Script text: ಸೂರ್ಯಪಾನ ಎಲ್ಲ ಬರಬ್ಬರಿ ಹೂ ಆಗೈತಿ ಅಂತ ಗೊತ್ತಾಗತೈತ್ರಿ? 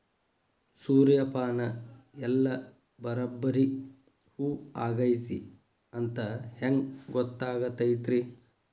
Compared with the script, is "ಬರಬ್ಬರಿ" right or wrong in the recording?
right